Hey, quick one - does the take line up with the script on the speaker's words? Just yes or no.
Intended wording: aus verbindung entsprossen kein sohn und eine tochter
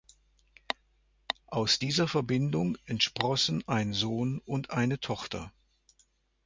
no